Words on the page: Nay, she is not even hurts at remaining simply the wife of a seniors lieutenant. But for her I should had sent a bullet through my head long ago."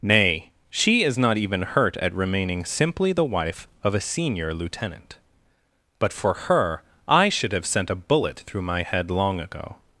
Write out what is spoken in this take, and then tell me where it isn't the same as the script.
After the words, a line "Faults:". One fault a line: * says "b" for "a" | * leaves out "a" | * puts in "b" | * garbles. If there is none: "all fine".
Nay, she is not even hurt at remaining simply the wife of a senior lieutenant. But for her I should have sent a bullet through my head long ago."
Faults:
* says "hurt" for "hurts"
* says "senior" for "seniors"
* says "have" for "had"